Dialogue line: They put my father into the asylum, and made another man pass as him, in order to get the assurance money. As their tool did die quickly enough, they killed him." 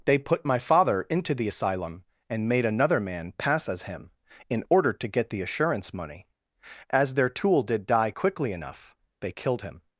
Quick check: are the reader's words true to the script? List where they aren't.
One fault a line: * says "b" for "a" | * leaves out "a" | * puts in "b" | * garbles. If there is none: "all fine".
all fine